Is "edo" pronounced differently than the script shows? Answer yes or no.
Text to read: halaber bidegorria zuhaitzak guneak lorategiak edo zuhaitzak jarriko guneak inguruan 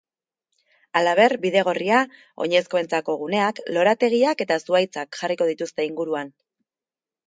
yes